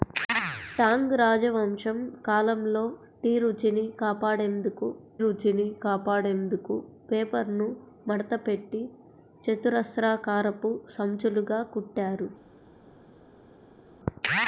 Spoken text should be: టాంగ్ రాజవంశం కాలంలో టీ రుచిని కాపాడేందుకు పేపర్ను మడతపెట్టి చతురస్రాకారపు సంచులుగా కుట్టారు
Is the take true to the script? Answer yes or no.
no